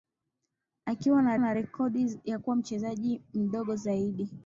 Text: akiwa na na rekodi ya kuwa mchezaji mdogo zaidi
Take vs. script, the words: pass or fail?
pass